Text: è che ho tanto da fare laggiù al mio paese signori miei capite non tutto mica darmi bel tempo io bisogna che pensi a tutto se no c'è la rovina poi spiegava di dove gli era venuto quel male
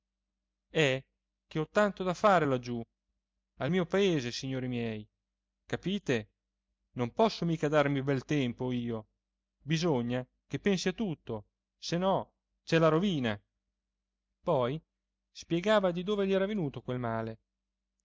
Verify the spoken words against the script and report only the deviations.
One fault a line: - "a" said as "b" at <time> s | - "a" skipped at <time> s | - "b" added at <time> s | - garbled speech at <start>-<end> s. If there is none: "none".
- "tutto" said as "posso" at 7.1 s